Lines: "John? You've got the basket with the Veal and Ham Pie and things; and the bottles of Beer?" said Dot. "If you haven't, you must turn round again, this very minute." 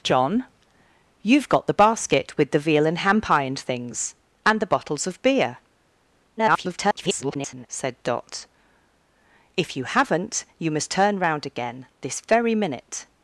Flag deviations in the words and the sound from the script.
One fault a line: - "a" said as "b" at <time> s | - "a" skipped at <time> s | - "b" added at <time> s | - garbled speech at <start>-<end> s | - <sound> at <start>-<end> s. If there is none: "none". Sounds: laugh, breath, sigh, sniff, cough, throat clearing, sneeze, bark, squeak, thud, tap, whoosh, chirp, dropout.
- garbled speech at 6.4-7.7 s